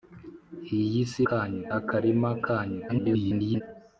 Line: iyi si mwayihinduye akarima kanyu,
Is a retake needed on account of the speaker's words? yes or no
yes